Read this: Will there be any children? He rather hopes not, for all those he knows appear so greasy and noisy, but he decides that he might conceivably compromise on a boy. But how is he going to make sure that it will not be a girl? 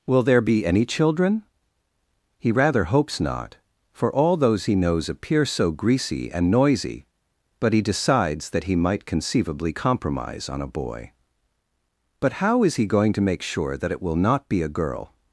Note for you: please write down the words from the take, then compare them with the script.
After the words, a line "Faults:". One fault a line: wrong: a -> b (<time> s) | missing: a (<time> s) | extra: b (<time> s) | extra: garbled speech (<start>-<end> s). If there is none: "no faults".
Will there be any children? He rather hopes not, for all those he knows appear so greasy and noisy, but he decides that he might conceivably compromise on a boy. But how is he going to make sure that it will not be a girl?
Faults:
no faults